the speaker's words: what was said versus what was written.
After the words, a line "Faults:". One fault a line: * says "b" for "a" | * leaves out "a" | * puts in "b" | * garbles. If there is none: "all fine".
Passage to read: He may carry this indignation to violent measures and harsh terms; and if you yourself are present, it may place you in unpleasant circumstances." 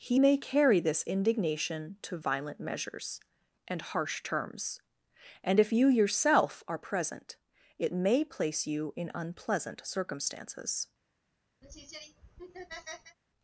He may carry this indignation to violent measures and harsh terms; and if you yourself are present, it may place you in unpleasant circumstances."
Faults:
all fine